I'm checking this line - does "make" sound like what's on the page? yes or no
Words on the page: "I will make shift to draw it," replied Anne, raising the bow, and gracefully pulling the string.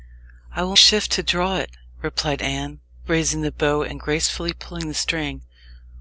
no